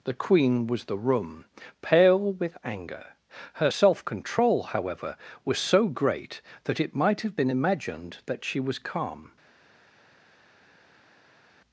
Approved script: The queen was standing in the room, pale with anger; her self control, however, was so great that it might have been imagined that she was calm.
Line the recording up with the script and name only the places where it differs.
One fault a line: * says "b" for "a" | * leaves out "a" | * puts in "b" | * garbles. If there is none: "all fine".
* leaves out "standing in"